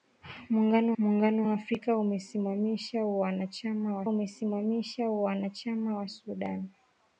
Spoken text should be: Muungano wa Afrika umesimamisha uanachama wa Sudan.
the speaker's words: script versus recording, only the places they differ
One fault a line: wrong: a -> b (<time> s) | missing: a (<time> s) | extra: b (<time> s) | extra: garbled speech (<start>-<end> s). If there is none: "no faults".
extra: muungano (1.0 s)
extra: umesimamisha uanachama wa (4.1 s)